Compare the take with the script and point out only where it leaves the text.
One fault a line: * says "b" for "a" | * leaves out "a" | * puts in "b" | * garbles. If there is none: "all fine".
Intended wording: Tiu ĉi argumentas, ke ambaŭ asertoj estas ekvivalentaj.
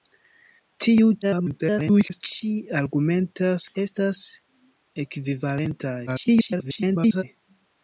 * garbles
* leaves out "ke ambaŭ asertoj"
* garbles